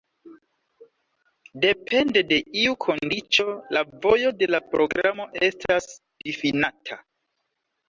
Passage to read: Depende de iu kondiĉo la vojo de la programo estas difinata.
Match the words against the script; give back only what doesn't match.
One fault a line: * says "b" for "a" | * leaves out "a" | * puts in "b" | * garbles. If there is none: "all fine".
all fine